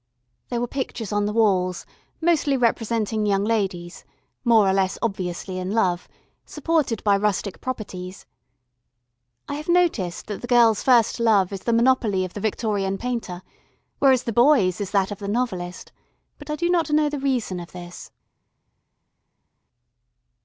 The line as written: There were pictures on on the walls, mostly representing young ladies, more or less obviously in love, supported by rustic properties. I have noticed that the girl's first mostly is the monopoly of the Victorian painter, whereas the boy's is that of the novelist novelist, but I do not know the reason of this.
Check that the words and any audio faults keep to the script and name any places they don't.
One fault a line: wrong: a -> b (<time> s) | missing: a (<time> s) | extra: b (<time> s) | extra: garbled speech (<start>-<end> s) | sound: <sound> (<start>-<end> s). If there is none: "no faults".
missing: on (1.3 s)
wrong: mostly -> love (11.2 s)
missing: novelist (15.9 s)